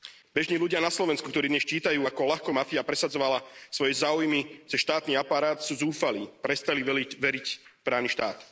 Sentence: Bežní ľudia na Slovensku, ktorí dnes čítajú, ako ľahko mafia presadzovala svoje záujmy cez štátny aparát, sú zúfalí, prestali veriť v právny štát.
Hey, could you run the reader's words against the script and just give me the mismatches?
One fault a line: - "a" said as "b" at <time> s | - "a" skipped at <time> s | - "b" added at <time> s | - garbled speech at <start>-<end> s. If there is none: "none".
none